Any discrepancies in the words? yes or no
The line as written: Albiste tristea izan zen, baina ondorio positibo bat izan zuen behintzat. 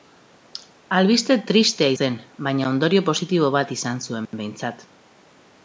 yes